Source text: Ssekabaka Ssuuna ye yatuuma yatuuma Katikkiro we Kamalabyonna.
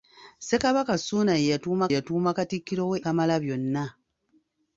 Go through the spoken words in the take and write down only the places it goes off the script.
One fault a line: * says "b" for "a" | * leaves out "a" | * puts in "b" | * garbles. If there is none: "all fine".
all fine